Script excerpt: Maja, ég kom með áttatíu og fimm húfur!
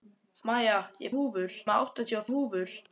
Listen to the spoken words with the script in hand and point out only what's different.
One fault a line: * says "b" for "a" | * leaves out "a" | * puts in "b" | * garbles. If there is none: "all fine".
* says "húfur" for "kom"
* leaves out "fimm"